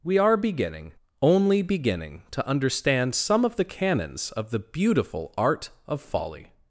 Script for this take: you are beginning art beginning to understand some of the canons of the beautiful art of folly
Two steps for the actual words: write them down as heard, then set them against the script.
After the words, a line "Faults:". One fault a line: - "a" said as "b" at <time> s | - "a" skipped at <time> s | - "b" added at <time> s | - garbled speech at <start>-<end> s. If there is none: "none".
we are beginning only beginning to understand some of the canons of the beautiful art of folly
Faults:
- "you" said as "we" at 0.0 s
- "art" said as "only" at 1.2 s